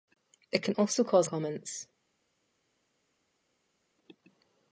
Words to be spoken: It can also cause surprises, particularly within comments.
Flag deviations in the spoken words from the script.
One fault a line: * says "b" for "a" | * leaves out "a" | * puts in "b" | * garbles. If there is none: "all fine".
* leaves out "surprises particularly within"